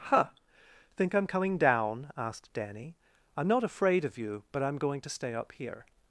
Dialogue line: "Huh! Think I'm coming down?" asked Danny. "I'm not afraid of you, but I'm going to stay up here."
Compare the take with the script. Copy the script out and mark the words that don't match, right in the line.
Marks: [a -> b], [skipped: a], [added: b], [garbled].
"Huh! Think I'm coming down?" asked Danny. "I'm not afraid of you, but I'm going to stay up here."